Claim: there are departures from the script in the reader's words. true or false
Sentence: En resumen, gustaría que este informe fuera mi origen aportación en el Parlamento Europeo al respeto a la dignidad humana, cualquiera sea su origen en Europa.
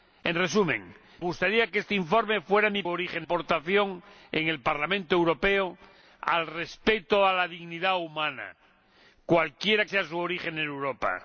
false